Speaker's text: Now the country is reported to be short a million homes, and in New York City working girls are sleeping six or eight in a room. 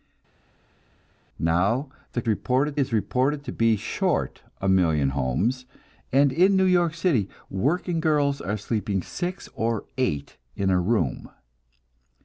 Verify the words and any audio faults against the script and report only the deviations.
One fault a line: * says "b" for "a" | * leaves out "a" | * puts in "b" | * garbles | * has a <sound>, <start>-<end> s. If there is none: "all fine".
* says "reported" for "country"